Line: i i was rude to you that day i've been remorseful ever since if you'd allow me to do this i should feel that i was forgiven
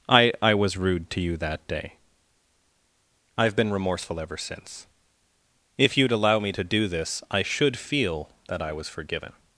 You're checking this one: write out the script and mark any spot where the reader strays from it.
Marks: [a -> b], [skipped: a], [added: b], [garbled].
i i was rude to you that day i've been remorseful ever since if you'd allow me to do this i should feel that i was forgiven